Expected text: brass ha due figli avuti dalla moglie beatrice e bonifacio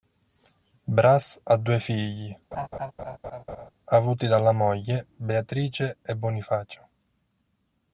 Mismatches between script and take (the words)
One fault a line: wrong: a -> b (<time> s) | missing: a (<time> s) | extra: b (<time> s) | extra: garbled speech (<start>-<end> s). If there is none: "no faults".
no faults